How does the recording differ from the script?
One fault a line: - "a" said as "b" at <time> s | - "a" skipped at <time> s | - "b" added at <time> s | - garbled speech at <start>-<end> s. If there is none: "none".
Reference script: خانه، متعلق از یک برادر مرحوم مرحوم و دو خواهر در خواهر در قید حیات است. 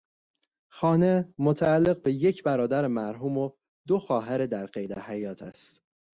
- "از" said as "به" at 2.0 s
- "مرحوم" skipped at 3.4 s
- "خواهر در" skipped at 4.7 s